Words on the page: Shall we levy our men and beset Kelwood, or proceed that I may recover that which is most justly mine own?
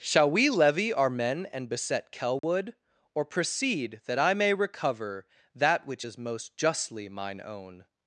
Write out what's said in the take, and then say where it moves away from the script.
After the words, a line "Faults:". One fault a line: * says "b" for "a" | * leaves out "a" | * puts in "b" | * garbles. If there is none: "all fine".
Shall we levy our men and beset Kelwood, or proceed that I may recover that which is most justly mine own?
Faults:
all fine